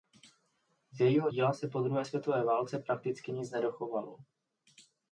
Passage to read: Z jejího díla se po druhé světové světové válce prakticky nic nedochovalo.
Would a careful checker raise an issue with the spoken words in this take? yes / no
yes